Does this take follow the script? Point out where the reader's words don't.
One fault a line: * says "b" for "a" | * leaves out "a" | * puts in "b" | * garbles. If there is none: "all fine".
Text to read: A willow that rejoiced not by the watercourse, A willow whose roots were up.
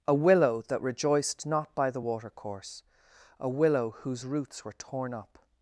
* puts in "torn"